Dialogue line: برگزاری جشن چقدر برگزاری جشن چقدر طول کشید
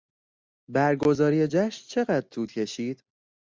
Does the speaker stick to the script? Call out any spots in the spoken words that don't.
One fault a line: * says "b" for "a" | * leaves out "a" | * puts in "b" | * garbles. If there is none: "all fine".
* leaves out "برگزاری جشن چقدر"